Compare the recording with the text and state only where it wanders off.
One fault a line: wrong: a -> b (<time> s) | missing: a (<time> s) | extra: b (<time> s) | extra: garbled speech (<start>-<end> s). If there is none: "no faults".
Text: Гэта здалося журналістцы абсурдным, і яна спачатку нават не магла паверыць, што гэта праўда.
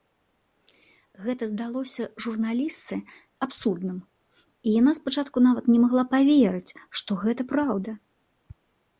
no faults